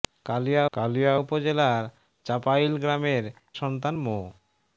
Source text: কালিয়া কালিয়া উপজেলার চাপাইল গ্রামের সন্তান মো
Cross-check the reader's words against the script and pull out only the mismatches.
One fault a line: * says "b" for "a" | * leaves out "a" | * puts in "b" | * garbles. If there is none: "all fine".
all fine